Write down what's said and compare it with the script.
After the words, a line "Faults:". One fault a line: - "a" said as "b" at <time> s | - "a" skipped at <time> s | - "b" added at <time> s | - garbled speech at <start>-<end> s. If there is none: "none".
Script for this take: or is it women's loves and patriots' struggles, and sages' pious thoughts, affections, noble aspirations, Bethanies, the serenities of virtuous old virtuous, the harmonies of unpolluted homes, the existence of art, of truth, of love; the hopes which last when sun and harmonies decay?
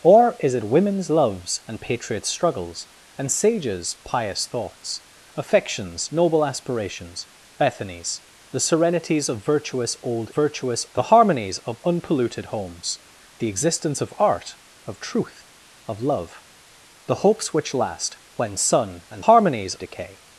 or is it women's loves and patriots' struggles, and sages' pious thoughts, affections, noble aspirations, Bethanies, the serenities of virtuous old virtuous, the harmonies of unpolluted homes, the existence of art, of truth, of love; the hopes which last when sun and harmonies decay?
Faults:
none